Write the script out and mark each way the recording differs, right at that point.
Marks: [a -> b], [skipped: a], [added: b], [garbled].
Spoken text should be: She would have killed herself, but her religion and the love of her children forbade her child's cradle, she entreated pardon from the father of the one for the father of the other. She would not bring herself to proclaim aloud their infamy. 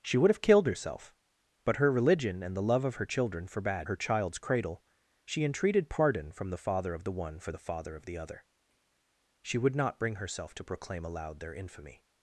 She would have killed herself, but her religion and the love of her children forbade her child's cradle, she entreated pardon from the father of the one for the father of the other. She would not bring herself to proclaim aloud their infamy.